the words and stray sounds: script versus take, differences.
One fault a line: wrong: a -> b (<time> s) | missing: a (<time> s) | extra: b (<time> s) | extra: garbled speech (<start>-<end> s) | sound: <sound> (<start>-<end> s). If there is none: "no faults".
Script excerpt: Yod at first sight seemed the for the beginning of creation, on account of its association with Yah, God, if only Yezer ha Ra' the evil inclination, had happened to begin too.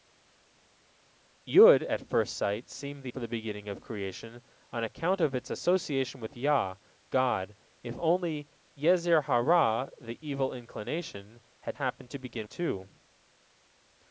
no faults